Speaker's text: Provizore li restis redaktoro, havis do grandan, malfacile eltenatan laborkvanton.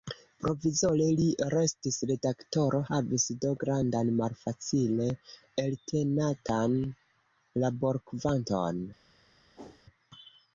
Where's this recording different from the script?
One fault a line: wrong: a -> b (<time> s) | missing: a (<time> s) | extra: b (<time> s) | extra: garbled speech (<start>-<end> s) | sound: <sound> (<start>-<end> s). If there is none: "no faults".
sound: whoosh (9.6-9.9 s)